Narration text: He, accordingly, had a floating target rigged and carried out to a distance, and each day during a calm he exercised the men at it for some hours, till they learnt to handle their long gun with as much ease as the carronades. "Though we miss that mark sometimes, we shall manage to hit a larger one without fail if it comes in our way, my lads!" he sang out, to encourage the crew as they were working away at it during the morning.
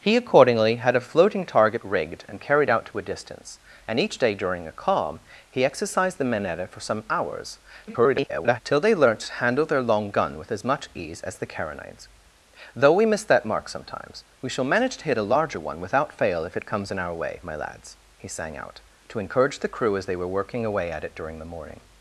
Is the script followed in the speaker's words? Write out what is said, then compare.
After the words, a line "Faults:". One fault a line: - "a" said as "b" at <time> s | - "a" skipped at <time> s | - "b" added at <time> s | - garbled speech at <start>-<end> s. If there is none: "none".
He, accordingly, had a floating target rigged and carried out to a distance, and each day during a calm he exercised the men at it for some hours, [garbled] till they learnt to handle their long gun with as much ease as the carronades. "Though we miss that mark sometimes, we shall manage to hit a larger one without fail if it comes in our way, my lads!" he sang out, to encourage the crew as they were working away at it during the morning.
Faults:
- garbled speech at 7.9-8.6 s